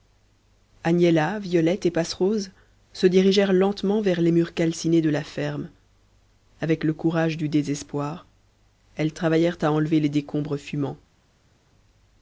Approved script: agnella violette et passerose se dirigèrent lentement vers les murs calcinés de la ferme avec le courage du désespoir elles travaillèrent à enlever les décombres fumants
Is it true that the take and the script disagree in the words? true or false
false